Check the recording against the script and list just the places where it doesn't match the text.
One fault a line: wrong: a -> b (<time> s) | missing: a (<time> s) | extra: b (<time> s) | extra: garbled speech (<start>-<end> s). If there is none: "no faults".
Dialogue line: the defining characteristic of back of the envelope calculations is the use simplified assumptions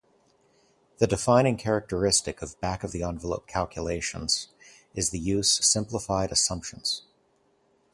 no faults